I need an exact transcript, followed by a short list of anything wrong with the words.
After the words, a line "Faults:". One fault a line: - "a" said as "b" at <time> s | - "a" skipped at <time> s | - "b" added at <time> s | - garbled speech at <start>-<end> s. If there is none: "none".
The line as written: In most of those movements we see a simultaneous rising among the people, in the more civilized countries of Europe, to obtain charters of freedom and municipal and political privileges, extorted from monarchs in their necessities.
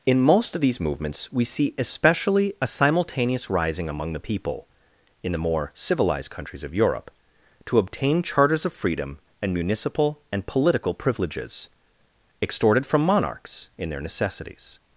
In most of these movements we see especially a simultaneous rising among the people, in the more civilized countries of Europe, to obtain charters of freedom and municipal and political privileges, extorted from monarchs in their necessities.
Faults:
- "those" said as "these" at 0.6 s
- "especially" added at 1.8 s